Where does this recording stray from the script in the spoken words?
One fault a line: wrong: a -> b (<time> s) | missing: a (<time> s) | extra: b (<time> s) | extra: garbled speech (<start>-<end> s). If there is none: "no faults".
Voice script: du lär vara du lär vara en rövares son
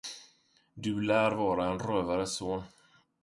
missing: du lär vara (1.6 s)